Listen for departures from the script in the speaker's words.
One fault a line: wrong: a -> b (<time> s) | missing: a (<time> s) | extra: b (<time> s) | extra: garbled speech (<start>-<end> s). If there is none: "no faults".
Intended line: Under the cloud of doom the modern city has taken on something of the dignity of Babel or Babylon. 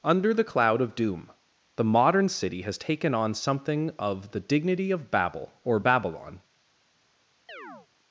no faults